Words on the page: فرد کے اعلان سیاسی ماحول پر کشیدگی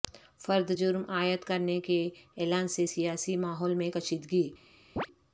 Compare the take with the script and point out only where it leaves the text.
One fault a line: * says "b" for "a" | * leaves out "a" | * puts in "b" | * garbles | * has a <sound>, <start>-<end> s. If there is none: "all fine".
* puts in "جرم عائد کرنے"
* puts in "سے"
* says "میں" for "پر"
* has a chirp, 5.0-5.1 s